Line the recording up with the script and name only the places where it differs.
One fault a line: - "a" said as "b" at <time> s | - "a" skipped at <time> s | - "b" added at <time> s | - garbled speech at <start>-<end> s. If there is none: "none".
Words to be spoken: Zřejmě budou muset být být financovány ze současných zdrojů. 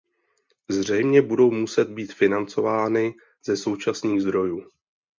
- "být" skipped at 2.1 s